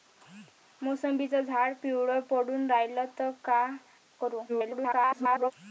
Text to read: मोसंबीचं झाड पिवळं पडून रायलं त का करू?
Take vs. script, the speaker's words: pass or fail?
fail